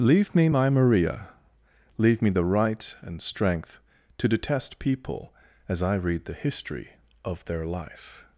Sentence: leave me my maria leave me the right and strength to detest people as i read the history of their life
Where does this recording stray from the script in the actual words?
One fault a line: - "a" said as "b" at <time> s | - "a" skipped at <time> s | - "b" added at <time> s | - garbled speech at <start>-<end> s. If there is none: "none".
none